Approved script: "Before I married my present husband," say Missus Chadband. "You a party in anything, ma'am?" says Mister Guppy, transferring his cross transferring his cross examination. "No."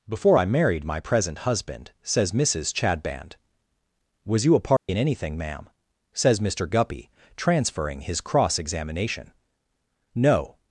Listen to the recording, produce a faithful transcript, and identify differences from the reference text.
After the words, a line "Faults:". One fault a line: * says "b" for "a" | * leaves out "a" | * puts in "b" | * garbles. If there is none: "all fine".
"Before I married my present husband," says Missus Chadband. "Was you a party in anything, ma'am?" says Mister Guppy, transferring his cross examination. "No."
Faults:
* says "says" for "say"
* puts in "Was"
* leaves out "transferring his cross"